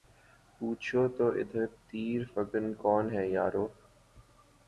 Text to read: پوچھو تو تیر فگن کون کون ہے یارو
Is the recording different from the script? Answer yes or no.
yes